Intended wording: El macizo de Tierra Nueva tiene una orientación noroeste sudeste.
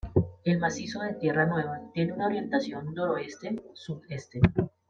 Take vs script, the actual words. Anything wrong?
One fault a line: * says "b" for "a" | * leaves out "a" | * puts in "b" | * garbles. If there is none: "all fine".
all fine